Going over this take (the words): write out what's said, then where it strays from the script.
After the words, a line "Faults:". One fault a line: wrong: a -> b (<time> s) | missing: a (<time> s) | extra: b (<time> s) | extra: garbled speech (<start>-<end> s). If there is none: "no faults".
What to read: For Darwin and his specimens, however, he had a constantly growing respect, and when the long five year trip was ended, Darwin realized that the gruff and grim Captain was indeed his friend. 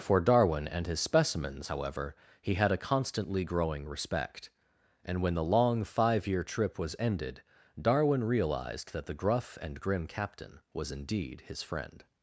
For Darwin and his specimens, however, he had a constantly growing respect, and when the long five year trip was ended, Darwin realized that the gruff and grim Captain was indeed his friend.
Faults:
no faults